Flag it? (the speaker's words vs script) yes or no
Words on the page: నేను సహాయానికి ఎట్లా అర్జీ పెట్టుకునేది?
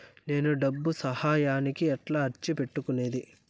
yes